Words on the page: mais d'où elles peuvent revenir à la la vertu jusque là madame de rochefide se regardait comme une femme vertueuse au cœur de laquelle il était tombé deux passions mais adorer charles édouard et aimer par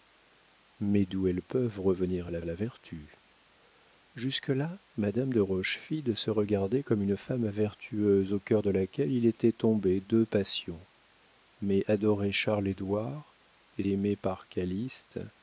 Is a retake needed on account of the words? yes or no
no